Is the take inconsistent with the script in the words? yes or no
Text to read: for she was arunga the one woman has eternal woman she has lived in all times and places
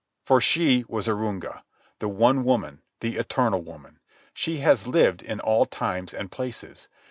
yes